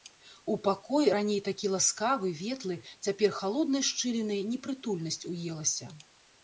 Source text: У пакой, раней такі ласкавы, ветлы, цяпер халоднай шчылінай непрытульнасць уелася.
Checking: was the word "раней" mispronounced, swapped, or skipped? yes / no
no